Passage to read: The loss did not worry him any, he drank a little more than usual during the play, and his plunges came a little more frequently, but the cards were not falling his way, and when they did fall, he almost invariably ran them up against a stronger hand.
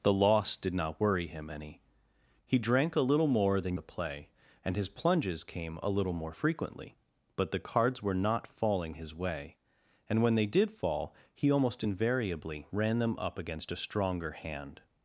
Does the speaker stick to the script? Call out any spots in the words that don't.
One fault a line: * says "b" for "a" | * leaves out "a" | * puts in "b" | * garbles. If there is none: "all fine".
* leaves out "usual during"